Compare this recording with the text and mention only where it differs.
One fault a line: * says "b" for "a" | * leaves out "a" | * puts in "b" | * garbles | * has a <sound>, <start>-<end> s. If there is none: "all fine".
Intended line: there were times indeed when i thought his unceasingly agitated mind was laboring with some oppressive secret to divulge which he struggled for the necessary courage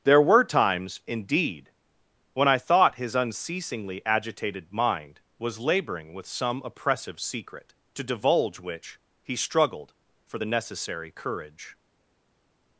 all fine